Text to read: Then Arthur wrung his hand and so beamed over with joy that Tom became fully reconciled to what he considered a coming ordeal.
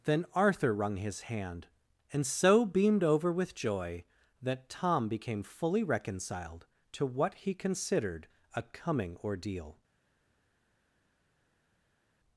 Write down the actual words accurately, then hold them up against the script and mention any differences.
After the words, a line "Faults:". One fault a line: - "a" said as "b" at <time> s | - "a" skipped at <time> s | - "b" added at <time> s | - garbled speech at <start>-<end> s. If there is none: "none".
Then Arthur wrung his hand and so beamed over with joy that Tom became fully reconciled to what he considered a coming ordeal.
Faults:
none